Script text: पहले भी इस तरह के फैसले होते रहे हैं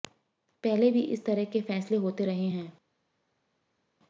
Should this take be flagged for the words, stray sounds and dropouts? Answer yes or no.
no